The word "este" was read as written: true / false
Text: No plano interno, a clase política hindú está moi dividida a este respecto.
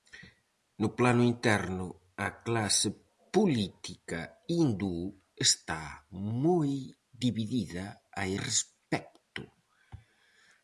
false